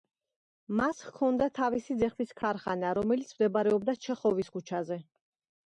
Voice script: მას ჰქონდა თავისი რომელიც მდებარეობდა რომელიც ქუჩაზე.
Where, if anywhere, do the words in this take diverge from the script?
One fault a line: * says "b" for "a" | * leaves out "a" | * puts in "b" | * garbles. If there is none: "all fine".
* puts in "ძეხვის ქარხანა"
* says "ჩეხოვის" for "რომელიც"